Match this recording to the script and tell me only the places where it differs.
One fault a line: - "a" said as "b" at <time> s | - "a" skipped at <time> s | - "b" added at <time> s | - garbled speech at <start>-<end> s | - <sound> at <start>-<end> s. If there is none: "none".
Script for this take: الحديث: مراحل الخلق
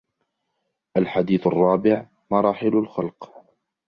- "الرابع" added at 1.5 s